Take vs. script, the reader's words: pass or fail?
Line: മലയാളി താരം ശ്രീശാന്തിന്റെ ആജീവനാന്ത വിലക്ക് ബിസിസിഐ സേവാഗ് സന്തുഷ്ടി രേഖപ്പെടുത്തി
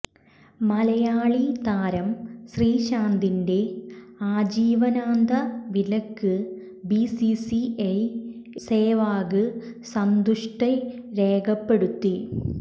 pass